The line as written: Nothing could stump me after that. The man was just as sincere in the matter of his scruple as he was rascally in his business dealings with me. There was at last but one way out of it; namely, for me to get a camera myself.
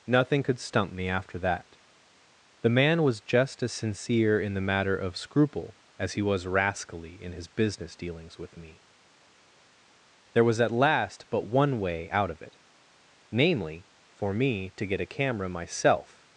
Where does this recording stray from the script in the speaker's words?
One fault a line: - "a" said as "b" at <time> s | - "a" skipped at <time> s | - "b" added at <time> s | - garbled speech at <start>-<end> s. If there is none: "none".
- "his" skipped at 5.2 s